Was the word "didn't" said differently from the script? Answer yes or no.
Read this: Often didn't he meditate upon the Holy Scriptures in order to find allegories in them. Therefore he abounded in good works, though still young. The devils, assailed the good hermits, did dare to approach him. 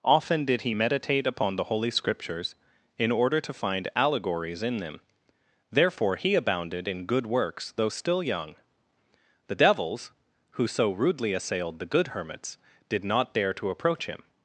yes